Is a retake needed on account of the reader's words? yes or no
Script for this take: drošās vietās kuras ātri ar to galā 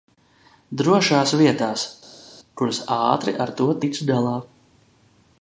yes